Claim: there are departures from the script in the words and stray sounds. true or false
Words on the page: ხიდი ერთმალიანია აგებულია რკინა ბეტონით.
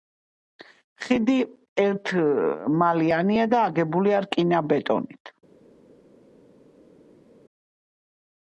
true